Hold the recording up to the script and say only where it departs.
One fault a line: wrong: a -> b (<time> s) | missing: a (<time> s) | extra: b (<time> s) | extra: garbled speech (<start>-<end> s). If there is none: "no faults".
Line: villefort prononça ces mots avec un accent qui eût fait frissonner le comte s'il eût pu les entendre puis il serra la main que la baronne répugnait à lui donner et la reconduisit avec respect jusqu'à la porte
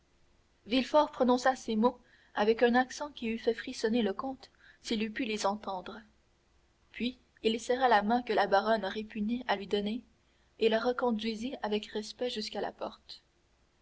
no faults